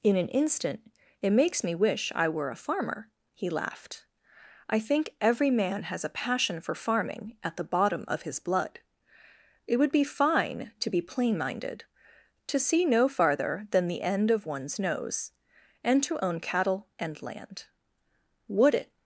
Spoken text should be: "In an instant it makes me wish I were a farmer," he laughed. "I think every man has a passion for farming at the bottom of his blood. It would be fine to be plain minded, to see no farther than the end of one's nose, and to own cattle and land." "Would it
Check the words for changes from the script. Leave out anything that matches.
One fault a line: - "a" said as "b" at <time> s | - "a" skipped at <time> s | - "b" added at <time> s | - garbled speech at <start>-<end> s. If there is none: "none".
none